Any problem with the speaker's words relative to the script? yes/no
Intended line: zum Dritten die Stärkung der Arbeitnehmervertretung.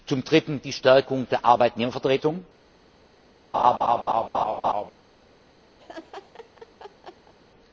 no